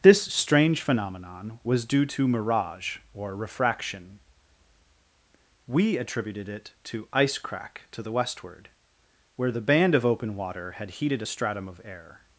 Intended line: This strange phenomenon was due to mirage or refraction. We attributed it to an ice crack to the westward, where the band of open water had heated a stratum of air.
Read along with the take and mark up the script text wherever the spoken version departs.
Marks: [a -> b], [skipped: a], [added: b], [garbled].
This strange phenomenon was due to mirage or refraction. We attributed it to [skipped: an] ice crack to the westward, where the band of open water had heated a stratum of air.